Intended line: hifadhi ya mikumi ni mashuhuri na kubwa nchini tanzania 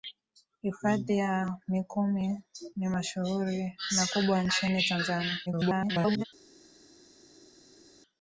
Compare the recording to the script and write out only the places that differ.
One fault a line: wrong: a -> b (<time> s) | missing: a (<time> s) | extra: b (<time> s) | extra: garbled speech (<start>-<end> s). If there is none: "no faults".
extra: garbled speech (5.5-6.2 s)